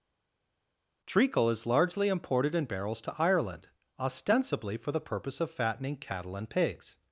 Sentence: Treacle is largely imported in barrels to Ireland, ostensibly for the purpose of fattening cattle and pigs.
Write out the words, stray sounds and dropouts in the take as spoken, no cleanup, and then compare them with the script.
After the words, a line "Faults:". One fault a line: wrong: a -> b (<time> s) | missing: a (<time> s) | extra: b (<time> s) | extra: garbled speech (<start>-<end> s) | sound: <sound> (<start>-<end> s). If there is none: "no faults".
Treacle is largely imported in barrels to Ireland, ostensibly for the purpose of fattening cattle and pigs.
Faults:
no faults